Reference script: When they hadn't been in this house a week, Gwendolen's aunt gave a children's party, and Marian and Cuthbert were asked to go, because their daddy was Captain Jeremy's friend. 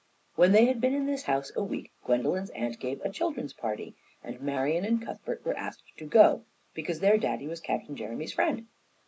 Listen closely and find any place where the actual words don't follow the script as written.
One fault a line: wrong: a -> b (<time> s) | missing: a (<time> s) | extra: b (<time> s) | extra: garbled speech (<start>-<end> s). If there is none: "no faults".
wrong: hadn't -> had (0.7 s)